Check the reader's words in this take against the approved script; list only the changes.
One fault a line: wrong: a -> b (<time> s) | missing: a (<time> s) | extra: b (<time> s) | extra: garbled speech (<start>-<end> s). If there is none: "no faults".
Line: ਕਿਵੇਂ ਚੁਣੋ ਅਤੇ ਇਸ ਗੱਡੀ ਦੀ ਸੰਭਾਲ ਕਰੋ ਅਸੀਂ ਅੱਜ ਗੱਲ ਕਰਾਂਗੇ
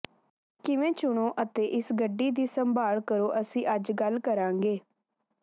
no faults